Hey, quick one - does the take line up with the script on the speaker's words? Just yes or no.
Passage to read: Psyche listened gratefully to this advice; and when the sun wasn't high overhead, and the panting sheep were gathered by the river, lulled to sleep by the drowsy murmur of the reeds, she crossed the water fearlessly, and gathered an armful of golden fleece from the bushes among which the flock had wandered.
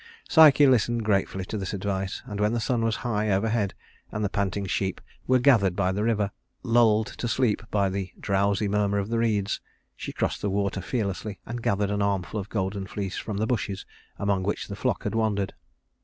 no